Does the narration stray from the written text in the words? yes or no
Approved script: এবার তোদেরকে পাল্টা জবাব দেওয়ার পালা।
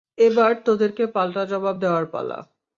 no